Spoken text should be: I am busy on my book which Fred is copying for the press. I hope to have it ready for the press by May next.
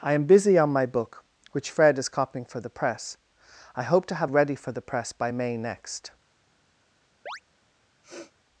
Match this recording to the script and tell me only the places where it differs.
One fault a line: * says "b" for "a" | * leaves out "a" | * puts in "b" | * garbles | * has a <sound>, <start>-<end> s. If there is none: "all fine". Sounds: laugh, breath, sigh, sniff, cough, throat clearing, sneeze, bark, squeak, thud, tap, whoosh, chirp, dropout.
* leaves out "it"
* has a chirp, 7.3-7.4 s
* has a sniff, 8.0-8.3 s